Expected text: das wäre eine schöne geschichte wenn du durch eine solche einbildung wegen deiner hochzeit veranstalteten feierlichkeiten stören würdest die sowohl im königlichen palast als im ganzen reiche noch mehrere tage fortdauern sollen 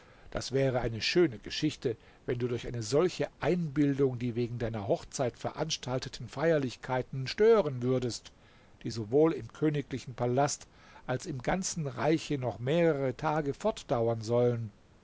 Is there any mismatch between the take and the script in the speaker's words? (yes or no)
yes